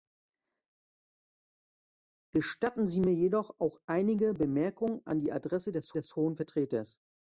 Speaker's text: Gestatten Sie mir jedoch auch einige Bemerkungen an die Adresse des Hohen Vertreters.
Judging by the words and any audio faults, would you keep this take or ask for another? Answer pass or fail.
fail